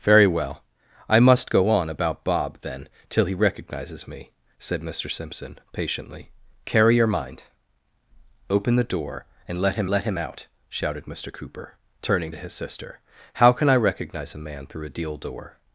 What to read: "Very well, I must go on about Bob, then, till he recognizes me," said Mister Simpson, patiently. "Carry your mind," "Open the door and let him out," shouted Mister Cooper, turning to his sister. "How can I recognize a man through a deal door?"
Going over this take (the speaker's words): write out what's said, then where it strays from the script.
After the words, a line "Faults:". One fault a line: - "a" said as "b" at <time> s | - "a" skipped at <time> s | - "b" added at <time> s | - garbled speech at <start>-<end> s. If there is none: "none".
"Very well, I must go on about Bob, then, till he recognizes me," said Mister Simpson, patiently. "Carry your mind," "Open the door and let him let him out," shouted Mister Cooper, turning to his sister. "How can I recognize a man through a deal door?"
Faults:
- "let him" added at 9.9 s